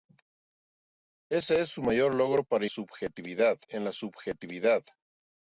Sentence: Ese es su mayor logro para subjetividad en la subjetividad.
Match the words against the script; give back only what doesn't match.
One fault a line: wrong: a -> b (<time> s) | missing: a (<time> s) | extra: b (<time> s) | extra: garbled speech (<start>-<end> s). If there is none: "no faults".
no faults